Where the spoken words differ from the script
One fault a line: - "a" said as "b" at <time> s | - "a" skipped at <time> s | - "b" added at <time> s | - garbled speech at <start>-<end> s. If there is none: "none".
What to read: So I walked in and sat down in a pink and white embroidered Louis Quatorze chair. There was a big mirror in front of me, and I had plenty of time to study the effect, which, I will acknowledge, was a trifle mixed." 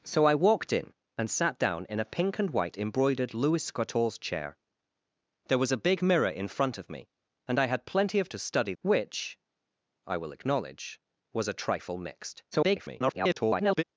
- "time" skipped at 8.3 s
- "the effect" skipped at 8.7 s
- garbled speech at 12.5-13.8 s